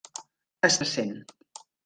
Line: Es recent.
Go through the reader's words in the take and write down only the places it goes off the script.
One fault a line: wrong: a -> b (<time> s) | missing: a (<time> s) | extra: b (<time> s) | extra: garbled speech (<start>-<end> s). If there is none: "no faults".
no faults